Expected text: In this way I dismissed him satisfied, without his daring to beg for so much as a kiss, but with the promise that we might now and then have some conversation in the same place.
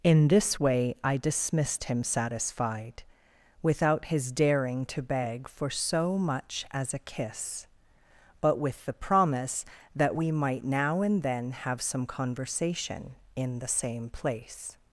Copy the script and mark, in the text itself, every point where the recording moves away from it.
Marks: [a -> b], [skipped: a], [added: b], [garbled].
In this way I dismissed him satisfied, without his daring to beg for so much as a kiss, but with the promise that we might now and then have some conversation in the same place.